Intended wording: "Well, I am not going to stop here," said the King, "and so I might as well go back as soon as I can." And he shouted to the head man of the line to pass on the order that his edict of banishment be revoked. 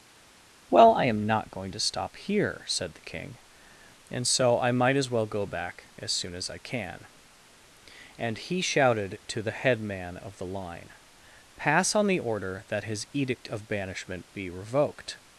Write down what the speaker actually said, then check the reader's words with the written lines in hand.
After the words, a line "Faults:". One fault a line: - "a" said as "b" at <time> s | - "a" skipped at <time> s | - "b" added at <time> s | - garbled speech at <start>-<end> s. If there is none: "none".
"Well, I am not going to stop here," said the King, "and so I might as well go back as soon as I can." And he shouted to the head man of the line pass on the order that his edict of banishment be revoked.
Faults:
- "to" skipped at 10.9 s